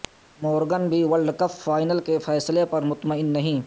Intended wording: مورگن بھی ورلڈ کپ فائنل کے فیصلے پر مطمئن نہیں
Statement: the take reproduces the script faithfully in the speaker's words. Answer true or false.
true